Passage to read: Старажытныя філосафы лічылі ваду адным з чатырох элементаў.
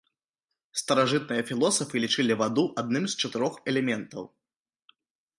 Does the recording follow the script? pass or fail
pass